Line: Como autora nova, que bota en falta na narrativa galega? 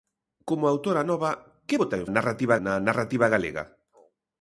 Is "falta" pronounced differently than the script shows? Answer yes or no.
yes